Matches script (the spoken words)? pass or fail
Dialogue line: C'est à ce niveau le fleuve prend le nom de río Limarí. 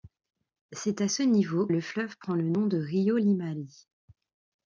pass